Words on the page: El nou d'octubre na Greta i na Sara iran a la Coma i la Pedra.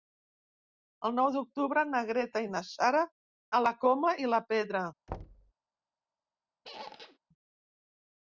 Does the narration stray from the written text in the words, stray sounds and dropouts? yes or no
yes